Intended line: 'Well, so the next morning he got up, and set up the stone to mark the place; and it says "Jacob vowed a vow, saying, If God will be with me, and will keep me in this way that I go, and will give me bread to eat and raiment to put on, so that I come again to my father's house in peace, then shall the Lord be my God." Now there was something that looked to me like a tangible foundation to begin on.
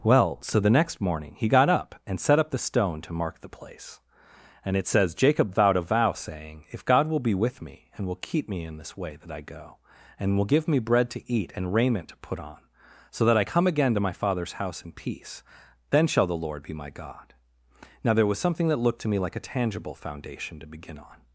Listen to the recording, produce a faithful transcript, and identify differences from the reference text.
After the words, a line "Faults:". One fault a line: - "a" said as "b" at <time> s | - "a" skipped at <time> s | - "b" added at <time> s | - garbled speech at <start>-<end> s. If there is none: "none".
'Well, so the next morning he got up, and set up the stone to mark the place; and it says "Jacob vowed a vow, saying, If God will be with me, and will keep me in this way that I go, and will give me bread to eat and raiment to put on, so that I come again to my father's house in peace, then shall the Lord be my God." Now there was something that looked to me like a tangible foundation to begin on.
Faults:
none